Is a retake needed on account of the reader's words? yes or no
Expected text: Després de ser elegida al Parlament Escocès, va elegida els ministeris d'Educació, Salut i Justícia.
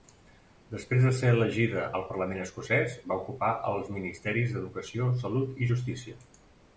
yes